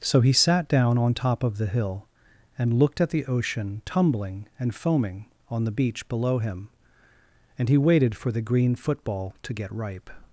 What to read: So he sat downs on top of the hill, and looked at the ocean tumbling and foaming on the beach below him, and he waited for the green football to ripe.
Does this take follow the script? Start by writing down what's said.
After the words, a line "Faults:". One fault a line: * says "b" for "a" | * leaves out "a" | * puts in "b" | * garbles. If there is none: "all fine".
So he sat down on top of the hill, and looked at the ocean tumbling and foaming on the beach below him, and he waited for the green football to get ripe.
Faults:
* says "down" for "downs"
* puts in "get"